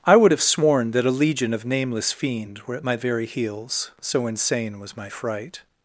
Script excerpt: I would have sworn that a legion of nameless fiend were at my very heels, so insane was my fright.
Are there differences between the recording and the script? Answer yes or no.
no